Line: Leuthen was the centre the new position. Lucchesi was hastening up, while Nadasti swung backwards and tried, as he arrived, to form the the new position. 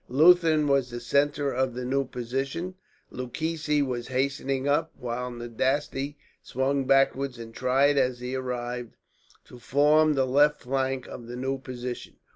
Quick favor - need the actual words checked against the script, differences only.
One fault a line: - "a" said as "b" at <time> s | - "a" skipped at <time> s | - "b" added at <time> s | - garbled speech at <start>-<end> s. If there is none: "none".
- "of" added at 1.5 s
- "left flank of" added at 10.2 s